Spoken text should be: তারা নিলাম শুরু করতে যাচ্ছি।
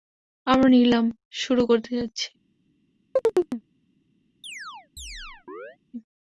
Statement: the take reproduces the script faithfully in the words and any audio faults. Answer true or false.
false